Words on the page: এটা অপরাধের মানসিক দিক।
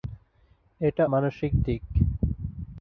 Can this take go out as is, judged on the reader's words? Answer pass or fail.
fail